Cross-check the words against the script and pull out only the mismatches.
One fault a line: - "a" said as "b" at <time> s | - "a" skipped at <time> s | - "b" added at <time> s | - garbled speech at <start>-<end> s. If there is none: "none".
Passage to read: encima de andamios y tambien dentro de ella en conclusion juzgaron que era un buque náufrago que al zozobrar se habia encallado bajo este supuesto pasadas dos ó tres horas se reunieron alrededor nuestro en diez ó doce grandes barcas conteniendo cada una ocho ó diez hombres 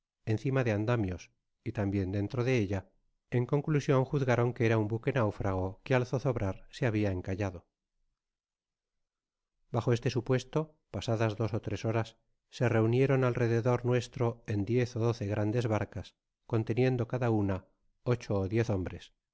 none